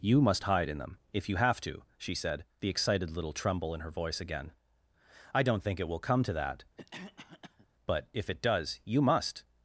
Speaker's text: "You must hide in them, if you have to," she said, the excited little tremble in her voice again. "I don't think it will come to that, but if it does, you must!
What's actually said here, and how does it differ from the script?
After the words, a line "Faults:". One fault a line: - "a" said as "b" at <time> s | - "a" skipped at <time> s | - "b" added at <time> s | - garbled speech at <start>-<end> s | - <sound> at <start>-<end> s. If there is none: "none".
"You must hide in them, if you have to," she said, the excited little tremble in her voice again. "I don't think it will come to that, but if it does, you must!
Faults:
- cough at 6.8-7.7 s